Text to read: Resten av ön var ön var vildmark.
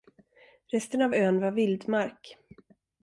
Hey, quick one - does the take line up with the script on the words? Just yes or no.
no